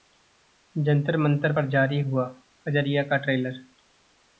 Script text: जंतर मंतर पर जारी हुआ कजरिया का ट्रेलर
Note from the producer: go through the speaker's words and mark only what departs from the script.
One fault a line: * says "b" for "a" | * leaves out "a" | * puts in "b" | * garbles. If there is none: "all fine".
all fine